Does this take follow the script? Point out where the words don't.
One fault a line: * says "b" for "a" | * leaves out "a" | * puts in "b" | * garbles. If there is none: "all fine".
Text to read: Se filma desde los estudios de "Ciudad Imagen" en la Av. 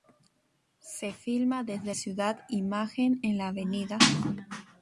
* leaves out "los estudios de"